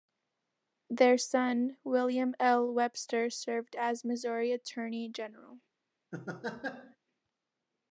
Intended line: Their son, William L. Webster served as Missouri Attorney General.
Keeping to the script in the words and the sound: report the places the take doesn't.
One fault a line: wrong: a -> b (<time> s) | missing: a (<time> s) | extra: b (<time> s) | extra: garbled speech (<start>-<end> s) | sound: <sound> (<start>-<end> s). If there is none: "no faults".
sound: laugh (6.1-7.0 s)